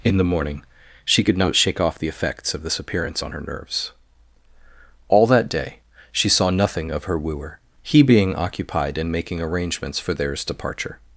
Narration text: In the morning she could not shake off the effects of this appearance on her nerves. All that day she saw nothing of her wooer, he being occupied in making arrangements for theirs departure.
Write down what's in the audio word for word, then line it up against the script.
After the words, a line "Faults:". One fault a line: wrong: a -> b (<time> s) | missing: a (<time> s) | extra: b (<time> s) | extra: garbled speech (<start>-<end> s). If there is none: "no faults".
In the morning she could not shake off the effects of this appearance on her nerves. All that day she saw nothing of her wooer, he being occupied in making arrangements for theirs departure.
Faults:
no faults